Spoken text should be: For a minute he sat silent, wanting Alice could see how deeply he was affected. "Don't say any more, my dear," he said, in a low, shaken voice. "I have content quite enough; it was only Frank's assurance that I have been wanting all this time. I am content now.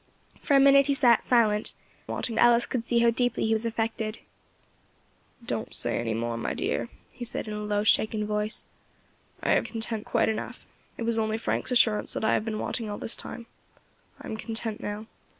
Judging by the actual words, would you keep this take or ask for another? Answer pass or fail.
pass